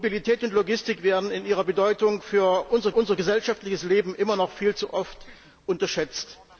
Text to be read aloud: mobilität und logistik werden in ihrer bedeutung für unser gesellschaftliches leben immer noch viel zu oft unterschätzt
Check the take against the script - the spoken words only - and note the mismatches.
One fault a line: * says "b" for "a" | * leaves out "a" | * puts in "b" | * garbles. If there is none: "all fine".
* puts in "unser"